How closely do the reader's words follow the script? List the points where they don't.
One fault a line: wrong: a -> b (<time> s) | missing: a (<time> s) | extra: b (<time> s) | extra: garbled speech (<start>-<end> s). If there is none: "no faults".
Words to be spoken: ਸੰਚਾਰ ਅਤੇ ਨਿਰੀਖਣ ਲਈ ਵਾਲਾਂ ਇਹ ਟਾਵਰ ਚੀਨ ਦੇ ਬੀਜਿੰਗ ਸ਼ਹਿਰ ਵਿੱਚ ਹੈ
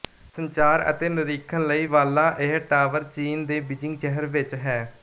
no faults